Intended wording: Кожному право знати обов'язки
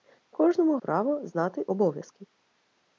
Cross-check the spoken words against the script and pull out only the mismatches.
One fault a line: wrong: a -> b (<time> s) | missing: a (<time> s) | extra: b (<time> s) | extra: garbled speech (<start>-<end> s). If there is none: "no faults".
no faults